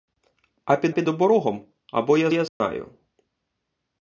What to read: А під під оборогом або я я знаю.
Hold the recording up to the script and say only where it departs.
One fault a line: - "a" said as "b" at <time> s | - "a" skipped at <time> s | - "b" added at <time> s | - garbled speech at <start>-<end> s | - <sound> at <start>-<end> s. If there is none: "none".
- dropout at 2.5-2.6 s